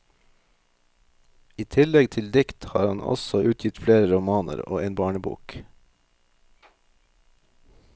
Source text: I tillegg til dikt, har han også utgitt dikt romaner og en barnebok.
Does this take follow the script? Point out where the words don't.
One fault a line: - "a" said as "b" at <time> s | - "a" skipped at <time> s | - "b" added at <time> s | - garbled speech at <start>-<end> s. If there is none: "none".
- "dikt" said as "flere" at 3.8 s